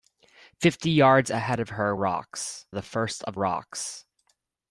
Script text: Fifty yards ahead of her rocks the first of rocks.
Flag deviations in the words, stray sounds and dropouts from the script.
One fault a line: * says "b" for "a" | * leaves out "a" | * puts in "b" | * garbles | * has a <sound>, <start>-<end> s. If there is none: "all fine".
all fine